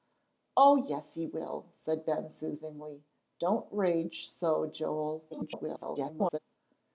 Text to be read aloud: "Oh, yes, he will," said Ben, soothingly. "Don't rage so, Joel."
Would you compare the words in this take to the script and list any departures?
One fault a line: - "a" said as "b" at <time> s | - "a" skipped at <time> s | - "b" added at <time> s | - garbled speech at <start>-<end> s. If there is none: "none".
- garbled speech at 5.3-6.4 s